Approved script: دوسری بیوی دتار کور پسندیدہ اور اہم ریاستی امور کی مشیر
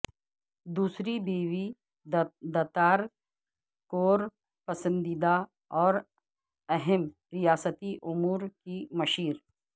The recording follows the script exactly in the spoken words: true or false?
true